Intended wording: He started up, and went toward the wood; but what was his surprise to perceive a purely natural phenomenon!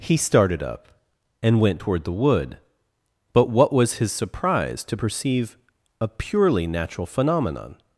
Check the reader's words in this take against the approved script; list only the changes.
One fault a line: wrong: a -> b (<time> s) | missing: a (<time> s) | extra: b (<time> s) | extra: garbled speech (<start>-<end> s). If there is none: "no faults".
no faults